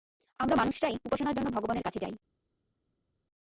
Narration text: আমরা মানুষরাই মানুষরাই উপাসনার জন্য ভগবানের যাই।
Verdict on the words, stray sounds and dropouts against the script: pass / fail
fail